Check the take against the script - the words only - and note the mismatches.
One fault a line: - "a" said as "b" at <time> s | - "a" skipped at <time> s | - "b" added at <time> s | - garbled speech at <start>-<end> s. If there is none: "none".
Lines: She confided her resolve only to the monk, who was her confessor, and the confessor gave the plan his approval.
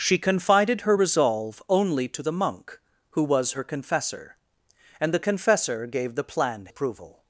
- "his" skipped at 6.7 s